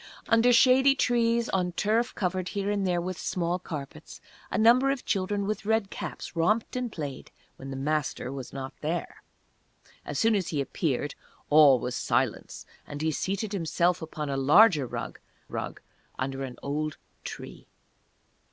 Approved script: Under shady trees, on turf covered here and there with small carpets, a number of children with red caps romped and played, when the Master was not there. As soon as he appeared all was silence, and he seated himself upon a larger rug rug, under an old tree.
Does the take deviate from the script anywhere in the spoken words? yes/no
no